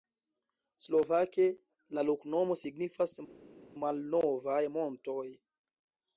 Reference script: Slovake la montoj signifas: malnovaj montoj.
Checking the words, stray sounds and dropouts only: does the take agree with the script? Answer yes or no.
no